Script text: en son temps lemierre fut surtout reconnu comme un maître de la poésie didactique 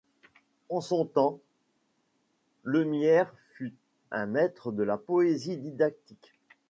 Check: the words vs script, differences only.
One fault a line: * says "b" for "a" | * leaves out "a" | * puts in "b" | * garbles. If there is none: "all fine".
* leaves out "surtout reconnu comme"